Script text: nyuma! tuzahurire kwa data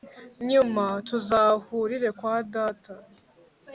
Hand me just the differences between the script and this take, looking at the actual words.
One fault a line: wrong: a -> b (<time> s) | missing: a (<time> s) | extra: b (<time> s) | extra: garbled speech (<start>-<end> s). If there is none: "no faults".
no faults